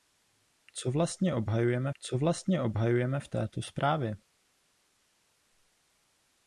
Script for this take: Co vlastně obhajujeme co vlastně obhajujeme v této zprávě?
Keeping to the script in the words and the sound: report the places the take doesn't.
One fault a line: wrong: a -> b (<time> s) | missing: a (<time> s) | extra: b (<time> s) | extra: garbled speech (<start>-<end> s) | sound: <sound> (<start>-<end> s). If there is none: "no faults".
no faults